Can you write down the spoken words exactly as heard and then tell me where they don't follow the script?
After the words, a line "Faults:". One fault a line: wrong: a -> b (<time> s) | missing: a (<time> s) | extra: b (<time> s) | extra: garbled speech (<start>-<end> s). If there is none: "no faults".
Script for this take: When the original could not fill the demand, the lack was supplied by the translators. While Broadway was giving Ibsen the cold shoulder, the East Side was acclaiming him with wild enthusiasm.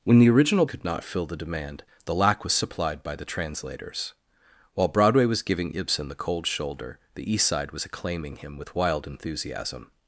When the original could not fill the demand, the lack was supplied by the translators. While Broadway was giving Ibsen the cold shoulder, the East Side was acclaiming him with wild enthusiasm.
Faults:
no faults